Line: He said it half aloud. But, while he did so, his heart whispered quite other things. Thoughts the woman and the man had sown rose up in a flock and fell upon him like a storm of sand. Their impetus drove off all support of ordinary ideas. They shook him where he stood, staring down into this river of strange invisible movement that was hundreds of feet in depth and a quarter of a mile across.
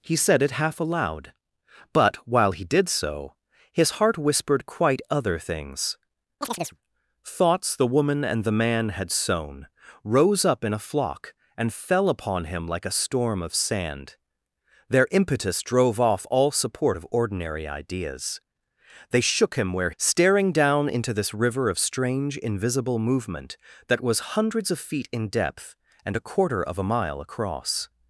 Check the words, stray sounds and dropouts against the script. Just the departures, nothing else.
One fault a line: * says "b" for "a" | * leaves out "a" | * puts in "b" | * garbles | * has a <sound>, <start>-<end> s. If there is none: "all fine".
* has a chirp, 6.4-6.8 s
* leaves out "he stood"